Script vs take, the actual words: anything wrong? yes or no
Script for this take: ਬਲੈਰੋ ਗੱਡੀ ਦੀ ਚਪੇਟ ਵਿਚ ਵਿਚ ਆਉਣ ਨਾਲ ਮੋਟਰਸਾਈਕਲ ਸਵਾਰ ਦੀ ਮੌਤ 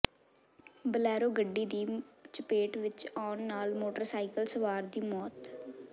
yes